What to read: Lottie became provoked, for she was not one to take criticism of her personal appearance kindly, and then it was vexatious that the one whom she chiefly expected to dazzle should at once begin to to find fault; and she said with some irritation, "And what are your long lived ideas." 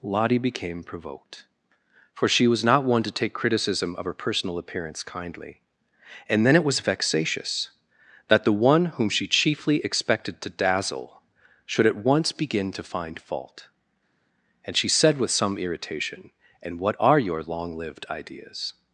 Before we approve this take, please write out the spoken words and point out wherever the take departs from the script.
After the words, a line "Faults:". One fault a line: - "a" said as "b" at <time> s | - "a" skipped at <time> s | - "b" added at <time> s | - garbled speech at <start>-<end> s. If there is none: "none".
Lottie became provoked, for she was not one to take criticism of her personal appearance kindly, and then it was vexatious that the one whom she chiefly expected to dazzle should at once begin to find fault; and she said with some irritation, "And what are your long lived ideas."
Faults:
- "to" skipped at 12.8 s